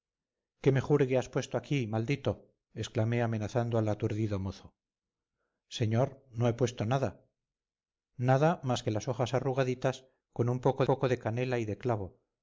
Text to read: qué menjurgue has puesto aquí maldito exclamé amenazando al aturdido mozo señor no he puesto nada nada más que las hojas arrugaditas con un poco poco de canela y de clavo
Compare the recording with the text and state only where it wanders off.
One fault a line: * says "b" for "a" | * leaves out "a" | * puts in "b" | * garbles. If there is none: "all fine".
all fine